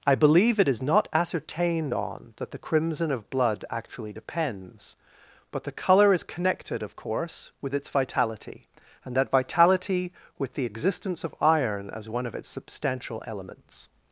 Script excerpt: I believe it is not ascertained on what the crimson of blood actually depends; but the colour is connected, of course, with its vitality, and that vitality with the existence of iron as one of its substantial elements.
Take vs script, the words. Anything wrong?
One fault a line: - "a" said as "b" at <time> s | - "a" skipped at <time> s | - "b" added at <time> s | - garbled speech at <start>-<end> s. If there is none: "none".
- "what" said as "that" at 2.4 s